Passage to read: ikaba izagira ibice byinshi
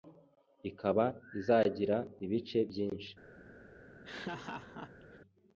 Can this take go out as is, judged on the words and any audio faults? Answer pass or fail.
fail